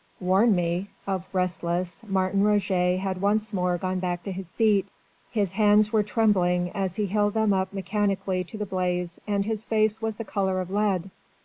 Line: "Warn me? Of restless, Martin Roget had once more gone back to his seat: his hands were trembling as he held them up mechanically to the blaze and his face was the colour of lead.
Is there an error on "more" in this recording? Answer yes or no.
no